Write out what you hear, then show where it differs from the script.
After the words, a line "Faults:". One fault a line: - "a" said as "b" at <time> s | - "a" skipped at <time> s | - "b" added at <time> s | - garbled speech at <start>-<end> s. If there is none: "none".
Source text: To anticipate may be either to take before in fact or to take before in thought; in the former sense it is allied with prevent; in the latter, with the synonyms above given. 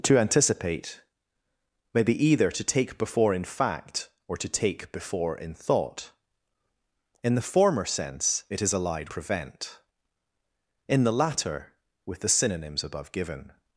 To anticipate may be either to take before in fact or to take before in thought; in the former sense it is allied prevent; in the latter, with the synonyms above given.
Faults:
- "with" skipped at 9.1 s